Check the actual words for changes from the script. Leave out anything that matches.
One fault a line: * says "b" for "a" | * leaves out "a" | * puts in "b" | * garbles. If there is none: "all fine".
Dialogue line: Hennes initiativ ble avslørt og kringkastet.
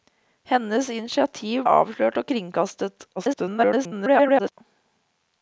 * leaves out "ble"
* garbles